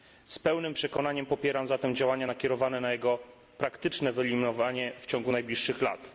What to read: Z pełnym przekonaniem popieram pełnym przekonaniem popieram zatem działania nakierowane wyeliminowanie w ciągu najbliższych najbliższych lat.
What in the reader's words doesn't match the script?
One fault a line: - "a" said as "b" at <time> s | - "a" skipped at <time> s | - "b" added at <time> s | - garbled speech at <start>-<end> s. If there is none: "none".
- "pełnym przekonaniem popieram zatem działania nakierowane" said as "zatem działania nakierowane na jego praktyczne" at 1.7 s
- "najbliższych" skipped at 5.8 s